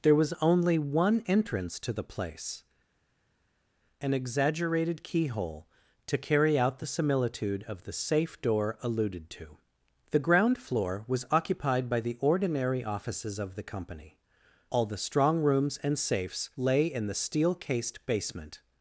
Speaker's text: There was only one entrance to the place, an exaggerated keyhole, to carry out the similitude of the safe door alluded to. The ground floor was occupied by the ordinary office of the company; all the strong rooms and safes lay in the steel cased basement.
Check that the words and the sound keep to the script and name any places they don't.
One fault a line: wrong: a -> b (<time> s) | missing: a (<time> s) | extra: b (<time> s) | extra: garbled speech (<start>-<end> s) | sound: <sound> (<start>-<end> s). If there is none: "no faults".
wrong: office -> offices (12.8 s)